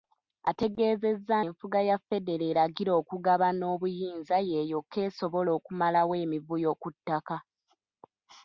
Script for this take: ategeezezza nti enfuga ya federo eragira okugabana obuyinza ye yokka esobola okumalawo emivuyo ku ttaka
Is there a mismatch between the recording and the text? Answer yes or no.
yes